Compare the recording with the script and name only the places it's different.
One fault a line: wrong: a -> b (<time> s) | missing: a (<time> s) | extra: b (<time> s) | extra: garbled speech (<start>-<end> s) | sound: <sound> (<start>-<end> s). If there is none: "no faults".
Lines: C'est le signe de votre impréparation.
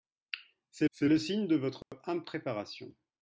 extra: c'est (0.9 s)
sound: dropout (1.8-1.9 s)